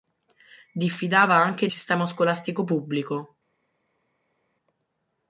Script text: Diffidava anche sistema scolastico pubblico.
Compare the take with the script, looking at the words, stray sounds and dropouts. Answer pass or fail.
pass